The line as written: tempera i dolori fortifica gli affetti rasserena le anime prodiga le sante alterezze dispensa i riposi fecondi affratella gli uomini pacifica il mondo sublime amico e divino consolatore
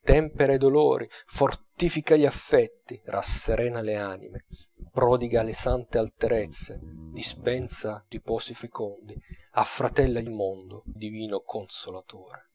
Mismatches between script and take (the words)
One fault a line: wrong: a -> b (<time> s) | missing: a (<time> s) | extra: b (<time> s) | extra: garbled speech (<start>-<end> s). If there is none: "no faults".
missing: i (8.0 s)
missing: uomini pacifica (10.3 s)
missing: sublime amico e (10.8 s)